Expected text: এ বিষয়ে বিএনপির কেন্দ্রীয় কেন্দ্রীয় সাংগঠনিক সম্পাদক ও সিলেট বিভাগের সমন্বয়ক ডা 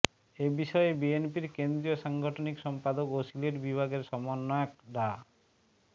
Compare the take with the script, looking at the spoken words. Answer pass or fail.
fail